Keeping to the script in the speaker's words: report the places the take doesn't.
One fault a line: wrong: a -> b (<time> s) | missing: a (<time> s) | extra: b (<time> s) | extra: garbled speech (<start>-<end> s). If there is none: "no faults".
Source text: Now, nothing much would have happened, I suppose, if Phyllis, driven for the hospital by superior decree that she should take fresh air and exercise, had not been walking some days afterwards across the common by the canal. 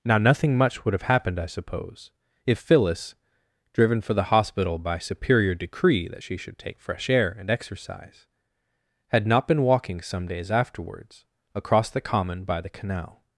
no faults